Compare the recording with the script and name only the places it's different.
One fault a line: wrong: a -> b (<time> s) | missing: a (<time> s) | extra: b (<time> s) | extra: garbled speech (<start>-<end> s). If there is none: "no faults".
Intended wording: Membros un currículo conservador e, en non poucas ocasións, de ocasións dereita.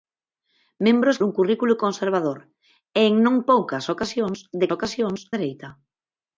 no faults